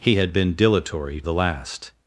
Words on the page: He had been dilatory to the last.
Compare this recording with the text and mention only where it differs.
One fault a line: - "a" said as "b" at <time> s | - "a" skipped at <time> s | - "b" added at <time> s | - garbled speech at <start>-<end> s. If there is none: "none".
- "to" skipped at 1.2 s